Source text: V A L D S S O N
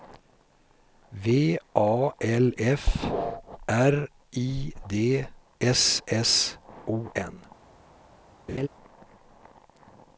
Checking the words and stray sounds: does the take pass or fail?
fail